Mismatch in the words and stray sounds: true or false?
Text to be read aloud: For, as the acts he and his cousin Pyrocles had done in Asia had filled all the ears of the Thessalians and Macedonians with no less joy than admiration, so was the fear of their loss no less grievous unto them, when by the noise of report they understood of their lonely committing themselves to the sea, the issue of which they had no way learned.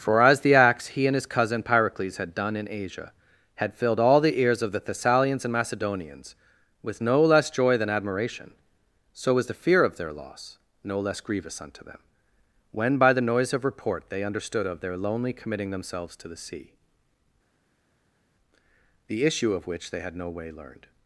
false